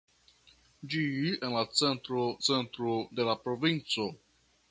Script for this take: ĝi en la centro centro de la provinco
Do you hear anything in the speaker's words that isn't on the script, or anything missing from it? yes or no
no